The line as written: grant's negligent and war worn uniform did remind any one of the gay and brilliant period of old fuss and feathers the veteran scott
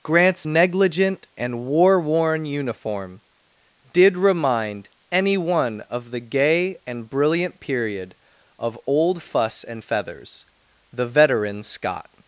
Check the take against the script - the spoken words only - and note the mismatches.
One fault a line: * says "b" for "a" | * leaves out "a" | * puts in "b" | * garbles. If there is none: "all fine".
all fine